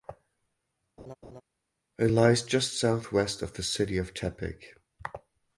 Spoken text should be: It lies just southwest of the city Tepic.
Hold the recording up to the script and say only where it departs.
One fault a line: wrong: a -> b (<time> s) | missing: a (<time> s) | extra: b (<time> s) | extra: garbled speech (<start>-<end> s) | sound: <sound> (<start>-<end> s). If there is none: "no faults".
sound: laugh (1.0-1.4 s)
extra: of (4.0 s)